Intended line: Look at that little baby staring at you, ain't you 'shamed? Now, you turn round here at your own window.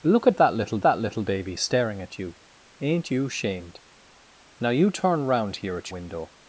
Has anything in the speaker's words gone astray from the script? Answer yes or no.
yes